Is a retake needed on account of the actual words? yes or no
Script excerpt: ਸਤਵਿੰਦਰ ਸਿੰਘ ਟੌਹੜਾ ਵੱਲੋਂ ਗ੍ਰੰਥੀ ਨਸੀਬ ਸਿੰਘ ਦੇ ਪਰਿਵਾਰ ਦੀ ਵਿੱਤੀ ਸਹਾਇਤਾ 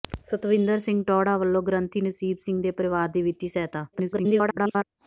yes